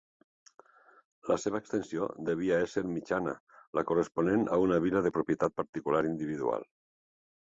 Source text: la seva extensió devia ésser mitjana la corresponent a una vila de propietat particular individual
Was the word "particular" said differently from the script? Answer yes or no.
no